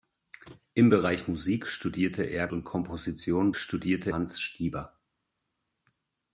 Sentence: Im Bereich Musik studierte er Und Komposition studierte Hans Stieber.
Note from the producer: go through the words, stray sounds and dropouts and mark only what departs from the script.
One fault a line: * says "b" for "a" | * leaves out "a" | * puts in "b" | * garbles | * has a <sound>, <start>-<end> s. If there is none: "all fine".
all fine